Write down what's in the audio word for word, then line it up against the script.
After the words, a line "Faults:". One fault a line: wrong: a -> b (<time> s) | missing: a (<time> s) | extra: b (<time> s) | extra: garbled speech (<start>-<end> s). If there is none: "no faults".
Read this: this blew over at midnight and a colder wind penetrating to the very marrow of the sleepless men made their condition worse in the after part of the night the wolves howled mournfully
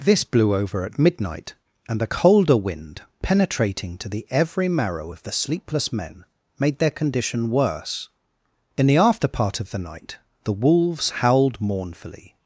this blew over at midnight and a colder wind penetrating to the every marrow of the sleepless men made their condition worse in the after part of the night the wolves howled mournfully
Faults:
wrong: very -> every (4.3 s)